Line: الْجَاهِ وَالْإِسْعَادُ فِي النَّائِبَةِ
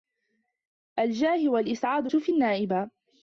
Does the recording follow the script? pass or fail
pass